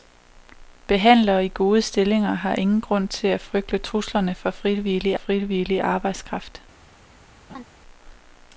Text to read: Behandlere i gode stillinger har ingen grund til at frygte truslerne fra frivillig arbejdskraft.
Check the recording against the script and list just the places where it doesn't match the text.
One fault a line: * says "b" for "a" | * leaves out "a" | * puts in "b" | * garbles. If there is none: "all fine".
* puts in "frivillig"